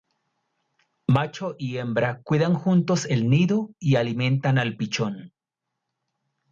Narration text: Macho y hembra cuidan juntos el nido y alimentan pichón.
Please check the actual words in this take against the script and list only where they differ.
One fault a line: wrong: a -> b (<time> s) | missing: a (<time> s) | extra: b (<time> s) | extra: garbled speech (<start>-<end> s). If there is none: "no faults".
extra: al (4.6 s)